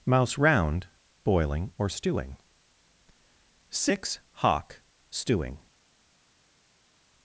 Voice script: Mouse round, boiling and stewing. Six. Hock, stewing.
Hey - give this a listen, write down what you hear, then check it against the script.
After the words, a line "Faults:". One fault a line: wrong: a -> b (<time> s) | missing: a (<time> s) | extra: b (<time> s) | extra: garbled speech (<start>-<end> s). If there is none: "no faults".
Mouse round, boiling or stewing. Six. Hock, stewing.
Faults:
wrong: and -> or (1.8 s)